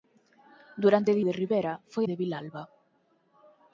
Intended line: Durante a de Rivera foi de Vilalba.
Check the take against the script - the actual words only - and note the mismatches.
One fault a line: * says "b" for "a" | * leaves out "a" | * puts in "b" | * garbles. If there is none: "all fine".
all fine